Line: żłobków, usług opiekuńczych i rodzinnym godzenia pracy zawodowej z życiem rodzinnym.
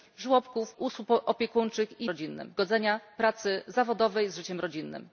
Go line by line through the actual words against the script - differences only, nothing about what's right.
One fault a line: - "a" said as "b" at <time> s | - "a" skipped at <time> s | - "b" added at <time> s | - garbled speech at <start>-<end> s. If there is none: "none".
none